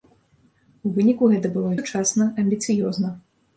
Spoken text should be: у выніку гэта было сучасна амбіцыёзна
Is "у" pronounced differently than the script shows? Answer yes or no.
no